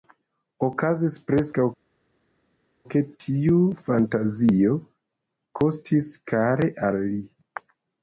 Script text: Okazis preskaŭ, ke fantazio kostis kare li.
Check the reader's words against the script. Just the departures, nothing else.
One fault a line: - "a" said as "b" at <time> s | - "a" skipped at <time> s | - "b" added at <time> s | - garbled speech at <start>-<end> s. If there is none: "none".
- "tiu" added at 3.2 s
- "al" added at 6.9 s